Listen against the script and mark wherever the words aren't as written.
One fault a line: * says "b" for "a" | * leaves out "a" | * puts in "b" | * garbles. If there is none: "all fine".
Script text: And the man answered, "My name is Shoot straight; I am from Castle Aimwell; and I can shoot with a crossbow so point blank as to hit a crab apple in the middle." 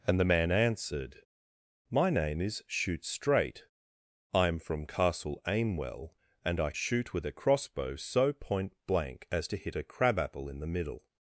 * leaves out "can"